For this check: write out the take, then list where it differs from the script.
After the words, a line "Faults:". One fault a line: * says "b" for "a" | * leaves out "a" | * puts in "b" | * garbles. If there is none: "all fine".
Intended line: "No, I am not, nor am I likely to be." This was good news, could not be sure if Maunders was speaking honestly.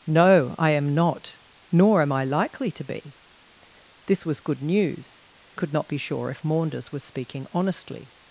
"No, I am not, nor am I likely to be." This was good news, could not be sure if Maunders was speaking honestly.
Faults:
all fine